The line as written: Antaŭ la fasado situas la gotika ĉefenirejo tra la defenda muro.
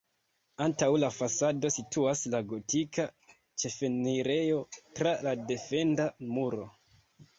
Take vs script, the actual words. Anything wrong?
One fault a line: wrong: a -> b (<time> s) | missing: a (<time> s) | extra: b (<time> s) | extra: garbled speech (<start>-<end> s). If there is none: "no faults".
no faults